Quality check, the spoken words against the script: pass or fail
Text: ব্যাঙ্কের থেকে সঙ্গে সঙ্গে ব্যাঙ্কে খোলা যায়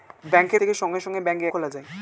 pass